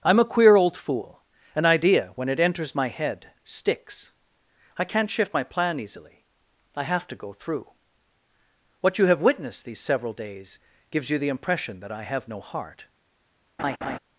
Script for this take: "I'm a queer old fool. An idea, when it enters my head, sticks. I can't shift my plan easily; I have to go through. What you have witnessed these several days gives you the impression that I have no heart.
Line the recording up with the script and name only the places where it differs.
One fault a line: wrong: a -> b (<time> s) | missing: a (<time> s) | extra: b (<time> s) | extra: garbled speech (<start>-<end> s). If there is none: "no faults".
no faults